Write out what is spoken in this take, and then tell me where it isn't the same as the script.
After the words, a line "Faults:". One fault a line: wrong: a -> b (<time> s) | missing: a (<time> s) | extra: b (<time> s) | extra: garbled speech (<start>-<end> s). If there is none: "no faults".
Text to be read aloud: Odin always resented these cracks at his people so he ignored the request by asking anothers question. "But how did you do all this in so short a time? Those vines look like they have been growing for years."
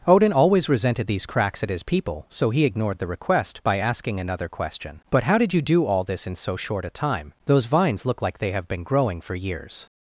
Odin always resented these cracks at his people so he ignored the request by asking another question. "But how did you do all this in so short a time? Those vines look like they have been growing for years."
Faults:
wrong: anothers -> another (4.2 s)